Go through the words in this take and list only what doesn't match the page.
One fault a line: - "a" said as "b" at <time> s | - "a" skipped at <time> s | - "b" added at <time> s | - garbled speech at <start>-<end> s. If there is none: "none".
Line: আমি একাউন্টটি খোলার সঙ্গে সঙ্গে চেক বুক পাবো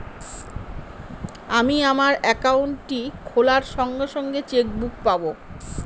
- "আমার" added at 1.9 s